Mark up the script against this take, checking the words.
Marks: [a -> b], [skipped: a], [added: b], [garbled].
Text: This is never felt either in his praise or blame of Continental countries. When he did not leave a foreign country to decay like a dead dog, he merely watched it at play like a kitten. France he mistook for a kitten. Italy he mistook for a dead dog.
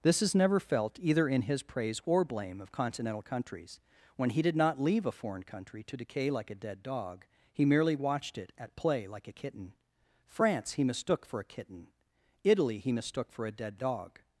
This is never felt either in his praise or blame of Continental countries. When he did not leave a foreign country to decay like a dead dog, he merely watched it at play like a kitten. France he mistook for a kitten. Italy he mistook for a dead dog.